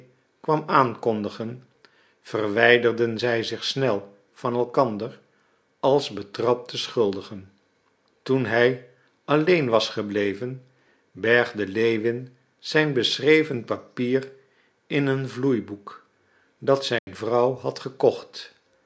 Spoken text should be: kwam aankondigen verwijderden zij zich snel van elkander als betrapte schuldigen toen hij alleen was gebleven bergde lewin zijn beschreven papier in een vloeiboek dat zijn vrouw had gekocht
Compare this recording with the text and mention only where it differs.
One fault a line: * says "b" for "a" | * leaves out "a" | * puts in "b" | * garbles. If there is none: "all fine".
all fine